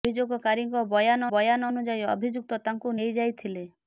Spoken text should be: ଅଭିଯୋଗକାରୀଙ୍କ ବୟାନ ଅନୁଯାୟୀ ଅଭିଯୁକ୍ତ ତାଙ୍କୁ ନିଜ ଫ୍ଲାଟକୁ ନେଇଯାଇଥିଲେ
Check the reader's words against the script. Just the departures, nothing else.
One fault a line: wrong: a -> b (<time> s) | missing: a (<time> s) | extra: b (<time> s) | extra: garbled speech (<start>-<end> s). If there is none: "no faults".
extra: ବୟାନ (1.3 s)
missing: ନିଜ ଫ୍ଲାଟକୁ (2.9 s)